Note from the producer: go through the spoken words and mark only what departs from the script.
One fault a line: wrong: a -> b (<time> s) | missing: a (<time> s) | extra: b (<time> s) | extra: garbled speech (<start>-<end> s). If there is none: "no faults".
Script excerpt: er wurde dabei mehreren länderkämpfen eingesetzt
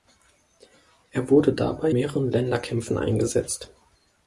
no faults